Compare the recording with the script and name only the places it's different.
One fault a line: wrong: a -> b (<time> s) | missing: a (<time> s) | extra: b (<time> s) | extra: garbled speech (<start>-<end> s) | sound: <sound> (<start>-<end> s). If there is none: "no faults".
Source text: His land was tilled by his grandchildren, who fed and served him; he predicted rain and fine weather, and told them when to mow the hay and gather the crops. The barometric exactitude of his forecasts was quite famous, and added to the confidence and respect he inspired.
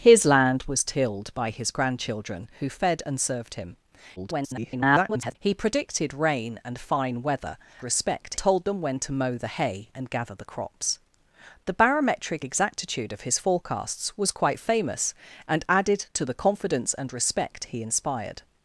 extra: garbled speech (4.2-5.4 s)
wrong: and -> respect (7.8 s)